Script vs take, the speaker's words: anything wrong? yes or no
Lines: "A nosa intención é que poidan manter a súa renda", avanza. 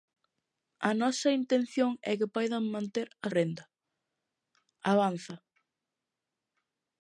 yes